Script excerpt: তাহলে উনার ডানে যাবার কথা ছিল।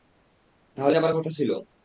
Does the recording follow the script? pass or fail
fail